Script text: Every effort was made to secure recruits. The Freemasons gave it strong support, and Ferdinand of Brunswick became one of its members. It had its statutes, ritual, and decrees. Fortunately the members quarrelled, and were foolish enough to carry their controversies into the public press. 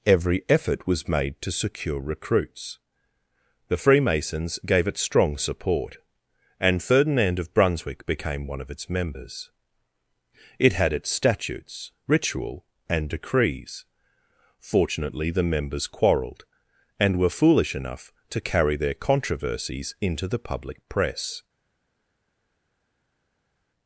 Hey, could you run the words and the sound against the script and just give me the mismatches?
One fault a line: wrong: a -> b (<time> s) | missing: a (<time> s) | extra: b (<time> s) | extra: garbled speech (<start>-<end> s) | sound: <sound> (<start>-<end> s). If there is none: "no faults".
no faults